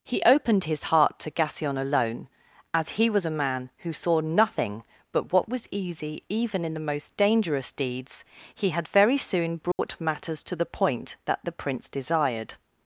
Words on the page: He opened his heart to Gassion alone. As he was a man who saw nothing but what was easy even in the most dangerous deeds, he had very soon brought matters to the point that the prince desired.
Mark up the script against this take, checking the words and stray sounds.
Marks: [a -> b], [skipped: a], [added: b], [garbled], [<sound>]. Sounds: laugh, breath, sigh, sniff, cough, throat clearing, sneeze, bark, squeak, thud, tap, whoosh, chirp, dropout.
He opened his heart to Gassion alone. As he was a man who saw nothing but what was easy even in the most dangerous deeds, he had very soon brought [dropout] matters to the point that the prince desired.